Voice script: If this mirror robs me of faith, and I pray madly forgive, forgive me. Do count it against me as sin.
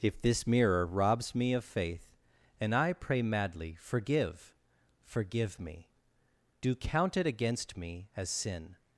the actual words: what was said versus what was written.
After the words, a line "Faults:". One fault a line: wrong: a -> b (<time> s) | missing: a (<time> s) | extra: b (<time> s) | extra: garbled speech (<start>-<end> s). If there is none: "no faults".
If this mirror robs me of faith, and I pray madly forgive, forgive me. Do count it against me as sin.
Faults:
no faults